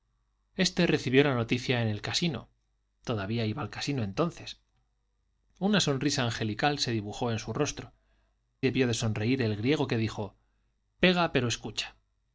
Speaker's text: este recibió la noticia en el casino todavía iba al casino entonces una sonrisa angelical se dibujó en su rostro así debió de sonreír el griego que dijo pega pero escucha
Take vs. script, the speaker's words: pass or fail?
fail